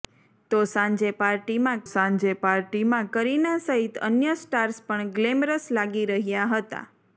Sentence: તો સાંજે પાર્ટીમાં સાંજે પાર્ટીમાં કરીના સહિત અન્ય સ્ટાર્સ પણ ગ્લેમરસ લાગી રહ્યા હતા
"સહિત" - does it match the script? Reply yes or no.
yes